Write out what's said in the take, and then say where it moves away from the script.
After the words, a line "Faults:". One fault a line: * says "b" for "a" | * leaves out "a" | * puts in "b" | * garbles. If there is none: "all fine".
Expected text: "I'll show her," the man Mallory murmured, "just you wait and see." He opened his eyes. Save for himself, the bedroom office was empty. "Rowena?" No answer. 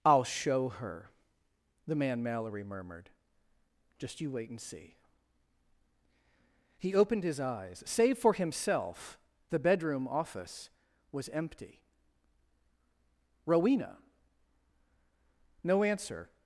"I'll show her," the man Mallory murmured, "just you wait and see." He opened his eyes. Save for himself, the bedroom office was empty. "Rowena?" No answer.
Faults:
all fine